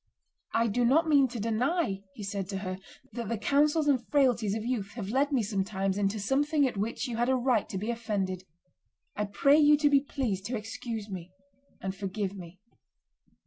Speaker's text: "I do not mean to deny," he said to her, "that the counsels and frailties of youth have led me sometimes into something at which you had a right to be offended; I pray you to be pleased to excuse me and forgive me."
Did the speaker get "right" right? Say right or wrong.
right